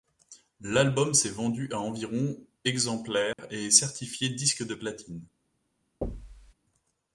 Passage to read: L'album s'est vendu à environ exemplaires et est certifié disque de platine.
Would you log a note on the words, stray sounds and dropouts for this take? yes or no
yes